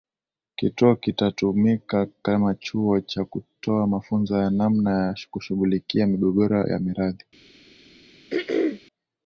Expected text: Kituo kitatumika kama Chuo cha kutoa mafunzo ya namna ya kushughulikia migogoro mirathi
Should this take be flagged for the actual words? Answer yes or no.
yes